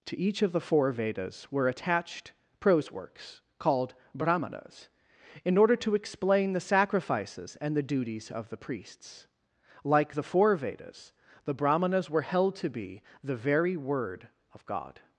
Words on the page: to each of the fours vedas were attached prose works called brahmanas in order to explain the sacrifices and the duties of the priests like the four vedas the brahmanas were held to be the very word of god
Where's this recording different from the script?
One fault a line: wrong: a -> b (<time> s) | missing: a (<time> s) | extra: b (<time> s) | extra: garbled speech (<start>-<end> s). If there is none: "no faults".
wrong: fours -> four (0.6 s)